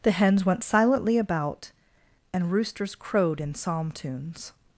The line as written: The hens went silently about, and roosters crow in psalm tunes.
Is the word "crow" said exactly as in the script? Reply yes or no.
no